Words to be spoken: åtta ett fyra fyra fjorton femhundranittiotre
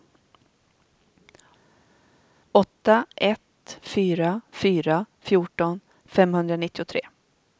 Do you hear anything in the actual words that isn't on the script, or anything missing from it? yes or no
no